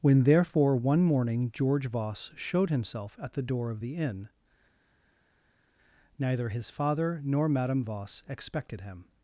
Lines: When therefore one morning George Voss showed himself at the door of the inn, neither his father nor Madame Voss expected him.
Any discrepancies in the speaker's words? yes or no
no